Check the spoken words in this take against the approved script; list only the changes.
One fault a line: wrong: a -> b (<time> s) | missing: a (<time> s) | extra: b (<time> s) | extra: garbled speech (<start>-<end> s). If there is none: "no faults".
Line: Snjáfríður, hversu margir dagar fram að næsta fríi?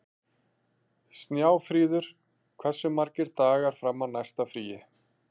no faults